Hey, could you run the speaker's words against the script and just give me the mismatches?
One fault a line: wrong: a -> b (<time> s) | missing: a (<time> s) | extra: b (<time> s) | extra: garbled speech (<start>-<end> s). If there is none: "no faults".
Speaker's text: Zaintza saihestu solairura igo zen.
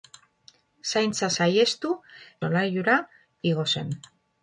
no faults